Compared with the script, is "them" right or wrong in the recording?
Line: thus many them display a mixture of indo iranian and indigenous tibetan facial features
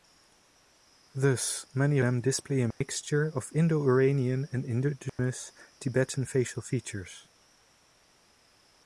right